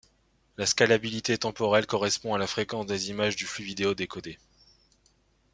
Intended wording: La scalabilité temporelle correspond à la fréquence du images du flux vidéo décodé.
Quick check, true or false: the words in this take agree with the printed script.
false